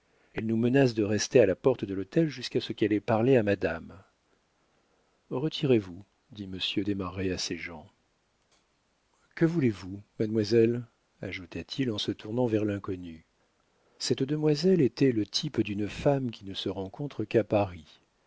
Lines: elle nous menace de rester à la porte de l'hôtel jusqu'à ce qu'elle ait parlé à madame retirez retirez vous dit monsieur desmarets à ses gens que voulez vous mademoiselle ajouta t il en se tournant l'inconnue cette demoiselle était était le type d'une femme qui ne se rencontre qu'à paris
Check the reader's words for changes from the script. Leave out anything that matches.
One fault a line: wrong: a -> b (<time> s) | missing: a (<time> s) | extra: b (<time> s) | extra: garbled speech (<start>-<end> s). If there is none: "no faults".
missing: retirez (5.8 s)
extra: vers (12.5 s)
missing: était (15.1 s)